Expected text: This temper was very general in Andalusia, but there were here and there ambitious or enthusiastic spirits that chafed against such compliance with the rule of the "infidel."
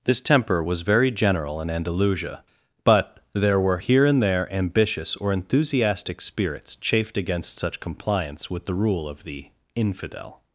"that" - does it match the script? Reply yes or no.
no